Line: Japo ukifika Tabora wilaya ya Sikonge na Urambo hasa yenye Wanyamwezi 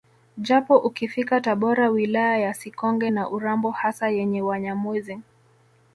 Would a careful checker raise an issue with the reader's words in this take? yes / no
no